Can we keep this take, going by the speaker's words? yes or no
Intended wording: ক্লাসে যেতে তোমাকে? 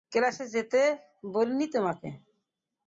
no